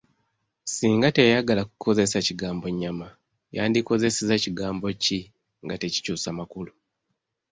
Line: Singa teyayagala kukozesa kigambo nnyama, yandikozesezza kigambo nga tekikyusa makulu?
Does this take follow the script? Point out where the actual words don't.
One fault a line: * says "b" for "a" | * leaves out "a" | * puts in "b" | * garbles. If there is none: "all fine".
* puts in "ki"